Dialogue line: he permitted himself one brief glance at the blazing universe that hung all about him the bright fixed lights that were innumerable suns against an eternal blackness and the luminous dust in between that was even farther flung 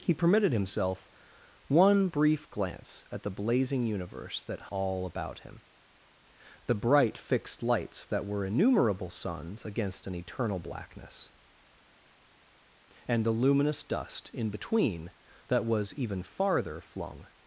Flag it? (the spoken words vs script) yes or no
yes